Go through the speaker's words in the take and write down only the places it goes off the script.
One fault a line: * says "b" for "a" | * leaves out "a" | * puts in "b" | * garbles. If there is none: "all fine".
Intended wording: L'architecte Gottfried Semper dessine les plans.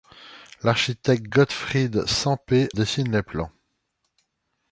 all fine